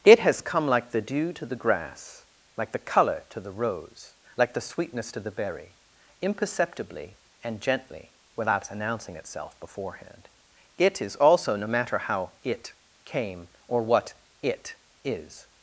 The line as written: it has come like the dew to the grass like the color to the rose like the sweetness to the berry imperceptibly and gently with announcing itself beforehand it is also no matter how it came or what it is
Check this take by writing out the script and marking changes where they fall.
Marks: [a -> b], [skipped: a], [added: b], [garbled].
it has come like the dew to the grass like the color to the rose like the sweetness to the berry imperceptibly and gently [with -> without] announcing itself beforehand it is also no matter how it came or what it is